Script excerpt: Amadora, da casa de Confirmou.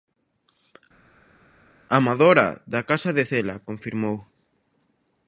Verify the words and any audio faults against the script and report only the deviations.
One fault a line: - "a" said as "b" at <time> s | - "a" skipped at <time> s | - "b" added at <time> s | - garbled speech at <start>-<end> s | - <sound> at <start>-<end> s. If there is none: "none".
- "Cela" added at 3.3 s